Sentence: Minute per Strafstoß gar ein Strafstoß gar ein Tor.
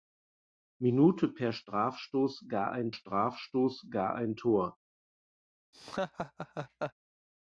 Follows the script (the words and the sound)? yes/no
no